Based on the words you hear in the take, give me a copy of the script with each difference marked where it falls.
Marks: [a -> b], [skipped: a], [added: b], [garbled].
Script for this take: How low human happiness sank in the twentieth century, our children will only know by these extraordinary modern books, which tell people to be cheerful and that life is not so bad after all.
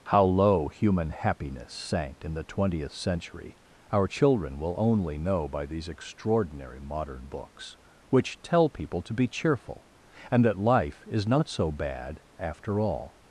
How low human happiness sank in the twentieth century, our children will only know by these extraordinary modern books, which tell people to be cheerful and that life is not so bad after all.